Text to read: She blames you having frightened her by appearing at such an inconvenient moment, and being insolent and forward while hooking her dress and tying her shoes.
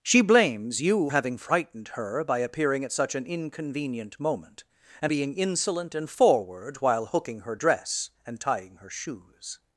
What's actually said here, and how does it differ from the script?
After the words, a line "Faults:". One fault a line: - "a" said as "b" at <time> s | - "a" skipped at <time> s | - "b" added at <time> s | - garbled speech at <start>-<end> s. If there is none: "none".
She blames you having frightened her by appearing at such an inconvenient moment, and being insolent and forward while hooking her dress and tying her shoes.
Faults:
none